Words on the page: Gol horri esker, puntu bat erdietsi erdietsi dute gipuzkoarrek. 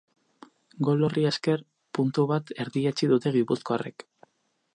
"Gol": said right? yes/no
yes